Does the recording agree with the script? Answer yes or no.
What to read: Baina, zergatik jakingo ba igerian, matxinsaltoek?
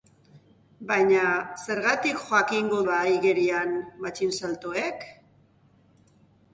yes